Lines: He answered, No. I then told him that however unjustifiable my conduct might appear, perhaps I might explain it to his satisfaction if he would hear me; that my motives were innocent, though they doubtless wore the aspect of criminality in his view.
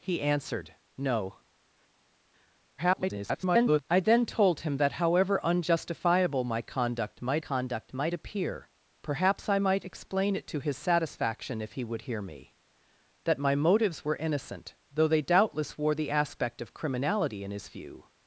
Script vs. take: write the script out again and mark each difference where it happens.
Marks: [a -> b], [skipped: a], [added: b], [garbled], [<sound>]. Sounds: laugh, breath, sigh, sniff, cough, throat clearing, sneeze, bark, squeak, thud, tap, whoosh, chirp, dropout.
He answered, No. [garbled] I then told him that however unjustifiable my conduct might [added: conduct might] appear, perhaps I might explain it to his satisfaction if he would hear me; that my motives were innocent, though they doubtless wore the aspect of criminality in his view.